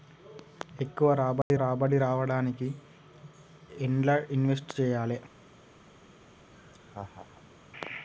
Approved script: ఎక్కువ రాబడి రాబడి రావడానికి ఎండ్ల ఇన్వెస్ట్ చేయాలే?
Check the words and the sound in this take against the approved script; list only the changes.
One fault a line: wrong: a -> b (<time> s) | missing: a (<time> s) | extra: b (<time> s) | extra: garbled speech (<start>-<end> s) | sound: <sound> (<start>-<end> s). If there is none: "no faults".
sound: dropout (1.4-1.5 s)
sound: laugh (6.5-7.6 s)